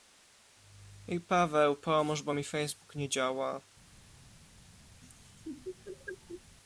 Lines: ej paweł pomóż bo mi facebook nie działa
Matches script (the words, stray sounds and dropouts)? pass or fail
fail